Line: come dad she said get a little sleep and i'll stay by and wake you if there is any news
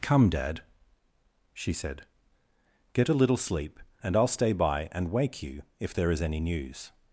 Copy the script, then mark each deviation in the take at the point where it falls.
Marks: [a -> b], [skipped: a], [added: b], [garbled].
come dad she said get a little sleep and i'll stay by and wake you if there is any news